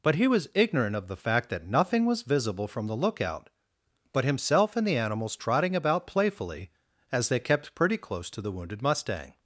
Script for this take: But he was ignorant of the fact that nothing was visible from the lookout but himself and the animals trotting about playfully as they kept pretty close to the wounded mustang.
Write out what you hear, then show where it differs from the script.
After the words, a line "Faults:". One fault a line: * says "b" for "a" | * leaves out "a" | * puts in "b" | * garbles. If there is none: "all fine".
But he was ignorant of the fact that nothing was visible from the lookout but himself and the animals trotting about playfully as they kept pretty close to the wounded mustang.
Faults:
all fine